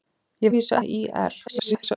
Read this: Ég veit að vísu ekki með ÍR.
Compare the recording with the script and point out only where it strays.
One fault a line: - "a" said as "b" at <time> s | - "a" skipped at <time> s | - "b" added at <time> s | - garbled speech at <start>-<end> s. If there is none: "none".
- "veit" skipped at 0.5 s
- "ekki" skipped at 0.8 s
- garbled speech at 1.5-2.0 s